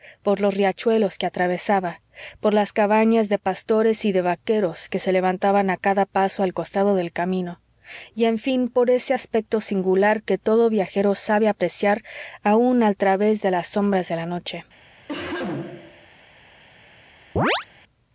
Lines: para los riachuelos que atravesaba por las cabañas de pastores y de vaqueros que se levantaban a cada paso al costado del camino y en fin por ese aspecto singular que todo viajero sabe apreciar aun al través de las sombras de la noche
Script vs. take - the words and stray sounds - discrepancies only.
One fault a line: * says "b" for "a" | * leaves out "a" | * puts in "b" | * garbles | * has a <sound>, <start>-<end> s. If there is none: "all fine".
* says "por" for "para"
* has a cough, 15.1-16.1 s
* has a chirp, 17.4-17.7 s